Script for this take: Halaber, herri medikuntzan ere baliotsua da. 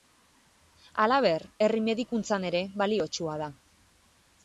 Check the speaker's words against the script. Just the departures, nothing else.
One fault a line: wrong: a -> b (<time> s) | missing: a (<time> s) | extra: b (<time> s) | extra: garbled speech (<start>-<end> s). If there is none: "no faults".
no faults